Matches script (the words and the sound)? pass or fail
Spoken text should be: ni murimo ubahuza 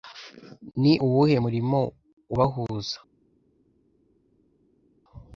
fail